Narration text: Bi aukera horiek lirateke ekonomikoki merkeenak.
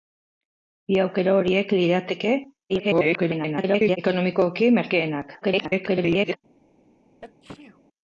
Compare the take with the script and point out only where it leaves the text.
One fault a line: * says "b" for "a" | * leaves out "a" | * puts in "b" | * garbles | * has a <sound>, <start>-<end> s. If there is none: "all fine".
* garbles
* garbles
* has a sneeze, 7.2-7.8 s